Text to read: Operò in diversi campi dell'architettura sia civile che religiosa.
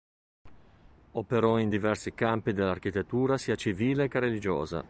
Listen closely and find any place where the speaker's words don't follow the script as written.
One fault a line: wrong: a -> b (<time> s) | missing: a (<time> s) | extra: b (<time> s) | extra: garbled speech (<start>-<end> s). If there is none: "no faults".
no faults